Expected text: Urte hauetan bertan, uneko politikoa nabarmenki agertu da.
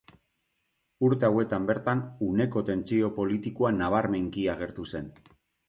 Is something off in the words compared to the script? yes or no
yes